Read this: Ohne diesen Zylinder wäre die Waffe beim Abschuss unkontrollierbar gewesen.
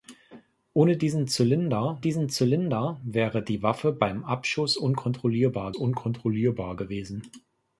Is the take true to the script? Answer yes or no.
no